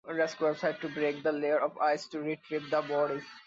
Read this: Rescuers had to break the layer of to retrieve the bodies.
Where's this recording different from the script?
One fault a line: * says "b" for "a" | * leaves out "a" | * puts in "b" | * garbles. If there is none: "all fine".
* puts in "ice"